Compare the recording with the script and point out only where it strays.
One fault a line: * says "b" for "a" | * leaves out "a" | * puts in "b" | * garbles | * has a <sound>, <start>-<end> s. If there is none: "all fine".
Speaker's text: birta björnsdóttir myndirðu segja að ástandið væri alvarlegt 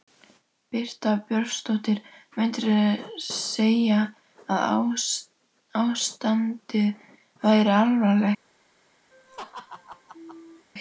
* has a laugh, 9.1-10.7 s